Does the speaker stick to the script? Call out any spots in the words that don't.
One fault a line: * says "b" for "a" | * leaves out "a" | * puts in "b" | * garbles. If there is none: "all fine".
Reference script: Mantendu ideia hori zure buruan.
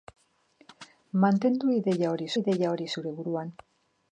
* puts in "ideia hori"